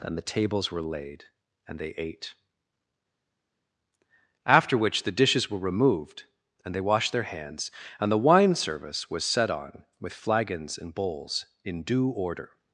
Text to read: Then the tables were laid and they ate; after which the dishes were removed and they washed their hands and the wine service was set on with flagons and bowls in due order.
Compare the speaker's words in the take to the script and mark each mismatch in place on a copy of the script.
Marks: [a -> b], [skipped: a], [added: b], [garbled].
Then the tables were laid and they ate; after which the dishes were removed and they washed their hands and the wine service was set on with flagons and bowls in due order.